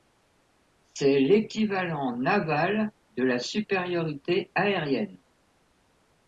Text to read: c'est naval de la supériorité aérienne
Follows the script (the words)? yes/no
no